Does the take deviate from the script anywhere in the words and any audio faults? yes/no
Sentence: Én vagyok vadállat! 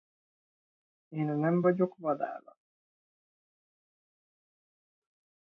yes